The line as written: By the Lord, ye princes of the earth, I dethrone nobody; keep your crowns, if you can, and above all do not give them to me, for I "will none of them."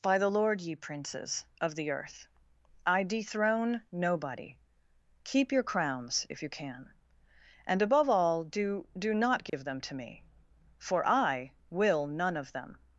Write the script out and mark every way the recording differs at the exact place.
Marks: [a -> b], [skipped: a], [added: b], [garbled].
By the Lord, ye princes of the earth, I dethrone nobody; keep your crowns, if you can, and above all do [added: do] not give them to me, for I "will none of them."